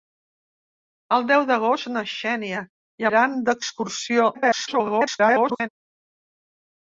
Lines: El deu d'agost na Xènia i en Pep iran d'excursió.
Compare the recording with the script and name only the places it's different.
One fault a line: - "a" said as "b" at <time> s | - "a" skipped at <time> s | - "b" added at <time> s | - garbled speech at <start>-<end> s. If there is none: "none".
- "en Pep" skipped at 3.1 s
- garbled speech at 4.3-5.7 s